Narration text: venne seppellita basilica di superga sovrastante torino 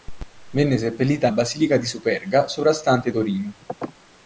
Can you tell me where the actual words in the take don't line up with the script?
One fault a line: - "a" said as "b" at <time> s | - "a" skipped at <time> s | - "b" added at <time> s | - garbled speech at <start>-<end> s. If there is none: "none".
none